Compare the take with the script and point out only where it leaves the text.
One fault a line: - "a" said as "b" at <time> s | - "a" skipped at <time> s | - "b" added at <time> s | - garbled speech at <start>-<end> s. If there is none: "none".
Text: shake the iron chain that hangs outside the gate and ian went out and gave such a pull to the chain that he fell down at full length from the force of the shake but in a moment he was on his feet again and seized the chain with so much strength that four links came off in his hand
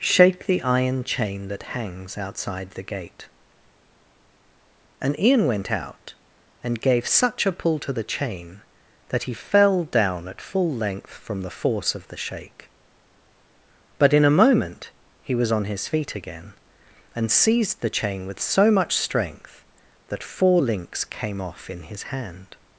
none